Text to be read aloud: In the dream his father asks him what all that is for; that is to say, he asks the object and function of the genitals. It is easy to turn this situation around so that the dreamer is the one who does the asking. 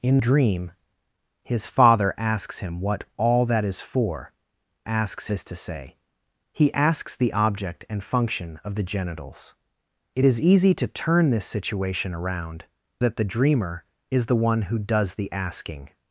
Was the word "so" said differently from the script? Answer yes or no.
yes